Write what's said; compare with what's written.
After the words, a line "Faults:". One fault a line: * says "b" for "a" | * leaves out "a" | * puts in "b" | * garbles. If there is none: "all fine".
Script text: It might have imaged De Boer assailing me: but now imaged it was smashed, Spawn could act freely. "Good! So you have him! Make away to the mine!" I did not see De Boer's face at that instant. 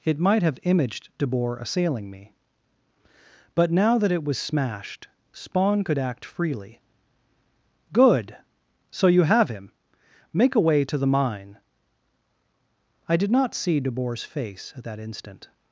It might have imaged De Boer assailing me: but now that it was smashed, Spawn could act freely. "Good! So you have him! Make away to the mine!" I did not see De Boer's face at that instant.
Faults:
* says "that" for "imaged"